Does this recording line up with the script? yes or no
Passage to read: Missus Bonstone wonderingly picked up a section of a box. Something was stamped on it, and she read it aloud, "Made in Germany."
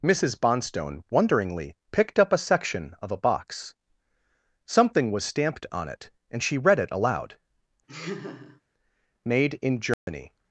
yes